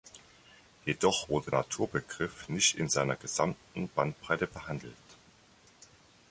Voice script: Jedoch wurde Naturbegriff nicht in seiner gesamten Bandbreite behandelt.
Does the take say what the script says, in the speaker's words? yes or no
yes